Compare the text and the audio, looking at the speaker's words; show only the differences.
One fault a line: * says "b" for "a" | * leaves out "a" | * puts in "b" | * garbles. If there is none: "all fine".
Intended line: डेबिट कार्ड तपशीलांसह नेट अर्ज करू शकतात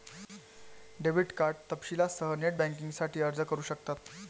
* puts in "बँकिंगसाठी"